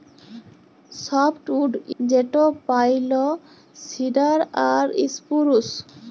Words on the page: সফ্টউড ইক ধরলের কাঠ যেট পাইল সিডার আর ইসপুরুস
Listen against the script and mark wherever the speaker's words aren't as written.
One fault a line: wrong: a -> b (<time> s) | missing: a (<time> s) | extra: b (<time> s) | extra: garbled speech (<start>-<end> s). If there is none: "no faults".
missing: ইক ধরলের কাঠ (1.7 s)